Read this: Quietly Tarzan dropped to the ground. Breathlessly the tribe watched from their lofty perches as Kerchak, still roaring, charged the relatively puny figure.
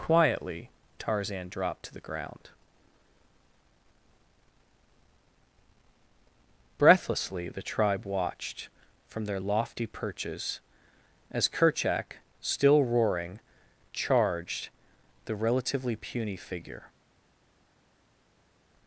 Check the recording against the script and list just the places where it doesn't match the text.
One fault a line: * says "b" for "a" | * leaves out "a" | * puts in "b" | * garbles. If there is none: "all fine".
all fine